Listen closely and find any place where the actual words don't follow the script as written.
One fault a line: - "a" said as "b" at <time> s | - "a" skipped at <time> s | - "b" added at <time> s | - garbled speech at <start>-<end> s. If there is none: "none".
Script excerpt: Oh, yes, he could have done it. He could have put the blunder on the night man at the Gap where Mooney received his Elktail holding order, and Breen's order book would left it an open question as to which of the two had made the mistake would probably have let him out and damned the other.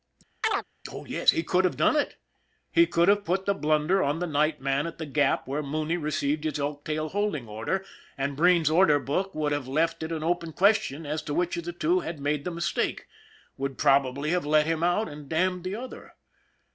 - "have" added at 9.5 s